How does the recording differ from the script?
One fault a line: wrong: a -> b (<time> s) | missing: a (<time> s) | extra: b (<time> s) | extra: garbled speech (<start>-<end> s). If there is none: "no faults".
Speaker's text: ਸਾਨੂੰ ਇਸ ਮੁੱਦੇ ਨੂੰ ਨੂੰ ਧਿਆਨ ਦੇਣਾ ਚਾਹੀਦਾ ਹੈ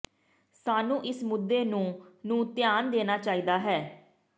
no faults